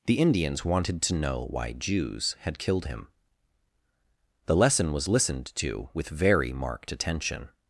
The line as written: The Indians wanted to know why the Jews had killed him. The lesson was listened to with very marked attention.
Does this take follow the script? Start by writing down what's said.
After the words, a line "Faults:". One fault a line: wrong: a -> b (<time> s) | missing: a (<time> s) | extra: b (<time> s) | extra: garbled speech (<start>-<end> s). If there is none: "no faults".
The Indians wanted to know why Jews had killed him. The lesson was listened to with very marked attention.
Faults:
missing: the (1.7 s)